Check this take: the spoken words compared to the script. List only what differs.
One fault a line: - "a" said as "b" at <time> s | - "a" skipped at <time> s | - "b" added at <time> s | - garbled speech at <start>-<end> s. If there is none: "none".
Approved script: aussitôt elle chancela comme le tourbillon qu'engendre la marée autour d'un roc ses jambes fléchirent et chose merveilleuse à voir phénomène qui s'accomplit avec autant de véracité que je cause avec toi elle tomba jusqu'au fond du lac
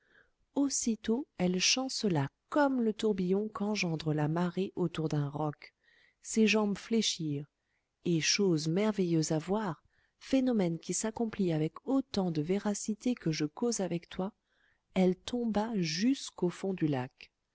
none